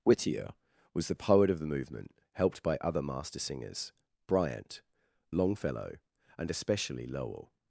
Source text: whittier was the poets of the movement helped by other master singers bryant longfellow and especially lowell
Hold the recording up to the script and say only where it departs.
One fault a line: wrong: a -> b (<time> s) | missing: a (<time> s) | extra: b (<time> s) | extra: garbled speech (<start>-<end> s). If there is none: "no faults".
wrong: poets -> poet (1.1 s)